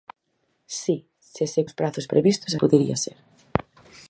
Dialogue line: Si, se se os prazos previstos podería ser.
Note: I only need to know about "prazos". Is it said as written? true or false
true